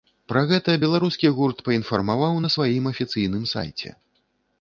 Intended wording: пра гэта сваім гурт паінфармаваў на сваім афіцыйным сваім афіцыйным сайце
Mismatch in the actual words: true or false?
true